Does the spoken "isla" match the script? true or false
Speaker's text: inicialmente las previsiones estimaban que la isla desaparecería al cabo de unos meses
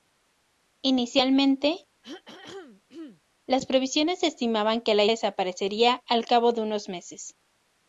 false